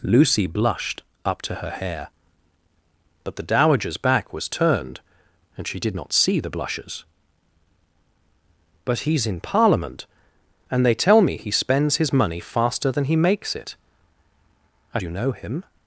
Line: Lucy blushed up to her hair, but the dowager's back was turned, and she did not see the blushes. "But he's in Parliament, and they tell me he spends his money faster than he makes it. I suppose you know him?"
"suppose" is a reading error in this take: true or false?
true